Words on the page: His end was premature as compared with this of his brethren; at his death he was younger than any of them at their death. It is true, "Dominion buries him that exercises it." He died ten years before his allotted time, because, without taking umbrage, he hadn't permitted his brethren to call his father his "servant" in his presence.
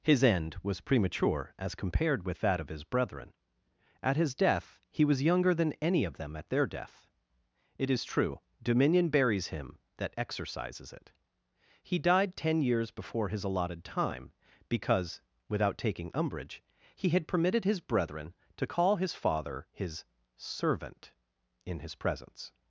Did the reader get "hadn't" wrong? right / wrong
wrong